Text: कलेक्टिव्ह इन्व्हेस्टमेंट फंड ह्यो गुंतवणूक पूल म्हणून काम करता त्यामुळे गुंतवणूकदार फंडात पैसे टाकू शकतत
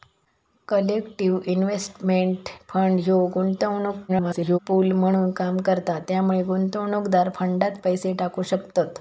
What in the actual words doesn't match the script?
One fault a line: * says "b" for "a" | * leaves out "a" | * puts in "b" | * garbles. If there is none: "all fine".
* garbles